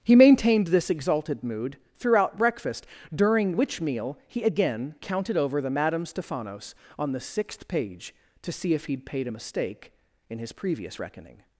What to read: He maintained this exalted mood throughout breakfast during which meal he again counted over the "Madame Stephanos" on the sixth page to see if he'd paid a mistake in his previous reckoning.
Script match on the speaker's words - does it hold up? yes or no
yes